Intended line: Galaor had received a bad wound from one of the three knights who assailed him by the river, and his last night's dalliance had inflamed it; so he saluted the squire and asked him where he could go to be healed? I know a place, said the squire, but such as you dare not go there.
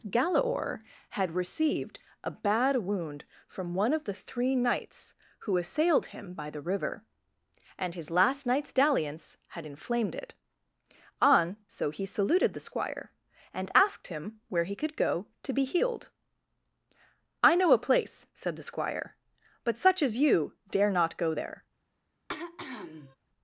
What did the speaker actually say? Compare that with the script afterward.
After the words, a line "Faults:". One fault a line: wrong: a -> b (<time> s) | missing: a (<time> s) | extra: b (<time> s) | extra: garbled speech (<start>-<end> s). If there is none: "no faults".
Galaor had received a bad wound from one of the three knights who assailed him by the river, and his last night's dalliance had inflamed it; on so he saluted the squire and asked him where he could go to be healed? I know a place, said the squire, but such as you dare not go there.
Faults:
extra: on (11.2 s)